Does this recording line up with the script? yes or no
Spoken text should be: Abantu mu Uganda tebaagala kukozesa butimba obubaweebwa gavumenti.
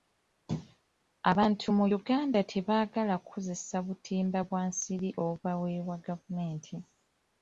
no